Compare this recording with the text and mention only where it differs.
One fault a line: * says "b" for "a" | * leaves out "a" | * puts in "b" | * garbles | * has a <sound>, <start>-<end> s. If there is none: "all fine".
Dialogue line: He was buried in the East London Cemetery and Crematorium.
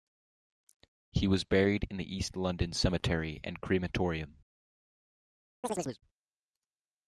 * has a chirp, 5.6-6.0 s